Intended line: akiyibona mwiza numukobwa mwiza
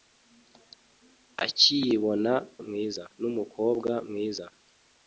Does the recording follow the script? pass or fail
pass